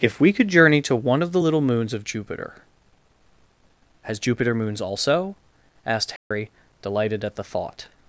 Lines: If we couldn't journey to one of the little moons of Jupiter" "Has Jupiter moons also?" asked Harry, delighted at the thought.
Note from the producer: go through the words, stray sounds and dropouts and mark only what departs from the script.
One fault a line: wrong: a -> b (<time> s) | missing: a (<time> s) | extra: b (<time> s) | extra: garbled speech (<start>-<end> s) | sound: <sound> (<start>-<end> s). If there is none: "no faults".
wrong: couldn't -> could (0.3 s)
sound: dropout (6.2-6.3 s)